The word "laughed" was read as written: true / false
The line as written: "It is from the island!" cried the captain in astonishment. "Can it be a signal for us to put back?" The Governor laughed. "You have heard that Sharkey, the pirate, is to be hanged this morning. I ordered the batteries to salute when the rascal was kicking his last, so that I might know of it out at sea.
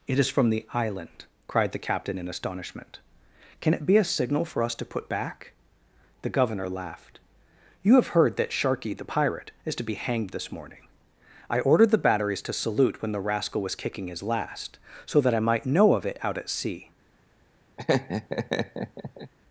true